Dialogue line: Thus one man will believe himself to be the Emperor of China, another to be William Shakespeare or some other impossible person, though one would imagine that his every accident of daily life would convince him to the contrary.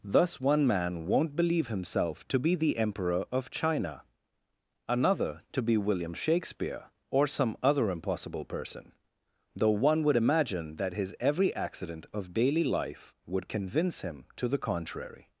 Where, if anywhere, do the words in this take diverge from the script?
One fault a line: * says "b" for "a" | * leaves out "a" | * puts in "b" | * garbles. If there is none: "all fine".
* says "won't" for "will"